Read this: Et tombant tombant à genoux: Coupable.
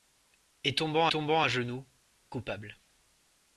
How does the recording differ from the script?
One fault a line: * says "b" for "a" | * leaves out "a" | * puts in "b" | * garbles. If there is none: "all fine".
all fine